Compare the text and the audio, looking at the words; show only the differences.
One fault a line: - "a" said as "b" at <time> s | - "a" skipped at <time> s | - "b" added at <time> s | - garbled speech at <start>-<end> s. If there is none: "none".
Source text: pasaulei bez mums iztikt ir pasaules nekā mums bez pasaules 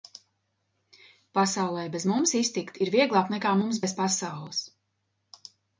- "pasaules" said as "vieglāk" at 3.0 s